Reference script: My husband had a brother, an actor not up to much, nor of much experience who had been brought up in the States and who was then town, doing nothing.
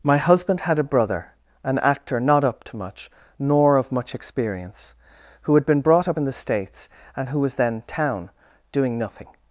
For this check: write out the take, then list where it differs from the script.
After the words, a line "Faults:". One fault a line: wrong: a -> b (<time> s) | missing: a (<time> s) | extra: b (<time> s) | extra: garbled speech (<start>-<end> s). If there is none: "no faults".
My husband had a brother, an actor not up to much, nor of much experience who had been brought up in the States and who was then town, doing nothing.
Faults:
no faults